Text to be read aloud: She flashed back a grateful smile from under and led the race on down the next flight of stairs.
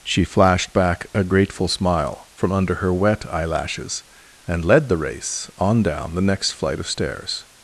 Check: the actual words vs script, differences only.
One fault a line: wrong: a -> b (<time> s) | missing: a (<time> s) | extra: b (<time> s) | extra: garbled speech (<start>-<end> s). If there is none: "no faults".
extra: her wet eyelashes (2.8 s)